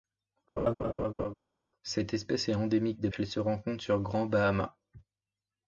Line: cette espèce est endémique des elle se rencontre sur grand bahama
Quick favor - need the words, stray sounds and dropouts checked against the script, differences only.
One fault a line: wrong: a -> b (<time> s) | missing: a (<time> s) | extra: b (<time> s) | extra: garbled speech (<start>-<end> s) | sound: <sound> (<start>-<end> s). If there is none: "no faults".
sound: laugh (0.6-1.3 s)